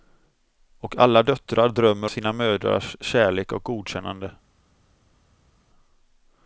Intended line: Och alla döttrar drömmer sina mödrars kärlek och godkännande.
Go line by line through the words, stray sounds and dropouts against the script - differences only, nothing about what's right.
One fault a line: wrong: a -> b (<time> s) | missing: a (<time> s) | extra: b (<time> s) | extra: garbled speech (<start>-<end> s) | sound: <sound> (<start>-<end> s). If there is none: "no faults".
no faults